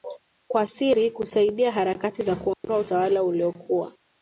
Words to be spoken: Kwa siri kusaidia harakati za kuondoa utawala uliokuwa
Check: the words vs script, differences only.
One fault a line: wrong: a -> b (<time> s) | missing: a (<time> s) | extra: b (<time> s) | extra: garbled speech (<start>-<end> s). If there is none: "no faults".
no faults